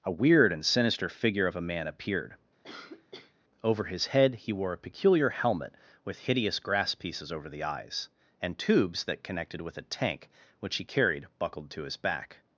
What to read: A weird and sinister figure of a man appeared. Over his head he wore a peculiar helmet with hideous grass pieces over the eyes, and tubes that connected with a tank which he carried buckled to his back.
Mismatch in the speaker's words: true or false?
false